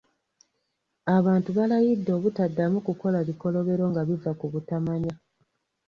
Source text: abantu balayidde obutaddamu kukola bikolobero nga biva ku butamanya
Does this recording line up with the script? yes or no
yes